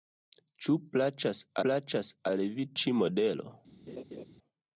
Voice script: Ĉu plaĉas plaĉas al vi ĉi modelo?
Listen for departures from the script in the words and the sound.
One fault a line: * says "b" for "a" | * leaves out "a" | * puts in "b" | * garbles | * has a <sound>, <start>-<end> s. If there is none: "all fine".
* has a laugh, 3.9-4.3 s